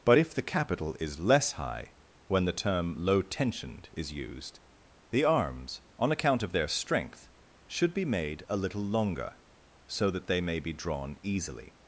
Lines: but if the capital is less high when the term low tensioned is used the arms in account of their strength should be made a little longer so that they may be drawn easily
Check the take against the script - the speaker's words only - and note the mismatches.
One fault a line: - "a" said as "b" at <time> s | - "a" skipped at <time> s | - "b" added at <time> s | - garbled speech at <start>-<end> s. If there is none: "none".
- "in" said as "on" at 6.0 s